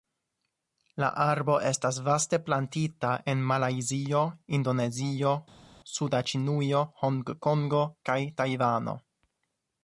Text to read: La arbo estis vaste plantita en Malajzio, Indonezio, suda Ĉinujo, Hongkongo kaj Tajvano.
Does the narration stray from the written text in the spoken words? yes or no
yes